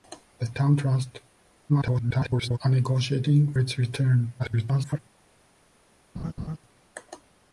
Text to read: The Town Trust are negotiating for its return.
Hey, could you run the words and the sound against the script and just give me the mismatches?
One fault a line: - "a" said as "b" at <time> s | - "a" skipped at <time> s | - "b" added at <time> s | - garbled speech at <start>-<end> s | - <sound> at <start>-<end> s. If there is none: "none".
- garbled speech at 1.7-2.6 s
- "for" skipped at 3.5 s
- garbled speech at 4.4-5.0 s
- laugh at 6.2-6.6 s